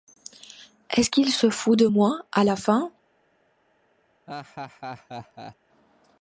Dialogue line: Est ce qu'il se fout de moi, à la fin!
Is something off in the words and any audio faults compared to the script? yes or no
yes